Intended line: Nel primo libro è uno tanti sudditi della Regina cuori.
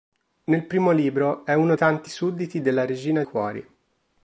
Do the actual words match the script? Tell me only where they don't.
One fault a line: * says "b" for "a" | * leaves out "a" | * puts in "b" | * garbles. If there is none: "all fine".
all fine